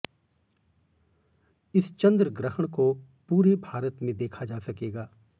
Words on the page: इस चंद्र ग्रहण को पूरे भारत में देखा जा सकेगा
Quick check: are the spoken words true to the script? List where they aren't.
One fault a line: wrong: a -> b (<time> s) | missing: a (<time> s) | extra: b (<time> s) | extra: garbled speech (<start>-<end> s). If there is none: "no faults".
no faults